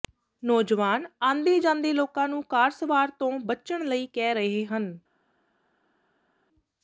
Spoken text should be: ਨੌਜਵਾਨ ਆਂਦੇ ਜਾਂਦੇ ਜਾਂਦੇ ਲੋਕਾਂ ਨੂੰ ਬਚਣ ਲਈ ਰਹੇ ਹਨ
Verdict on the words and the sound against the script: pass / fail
fail